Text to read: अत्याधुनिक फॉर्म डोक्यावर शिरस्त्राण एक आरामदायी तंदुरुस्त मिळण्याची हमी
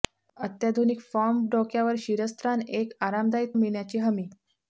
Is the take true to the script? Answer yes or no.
no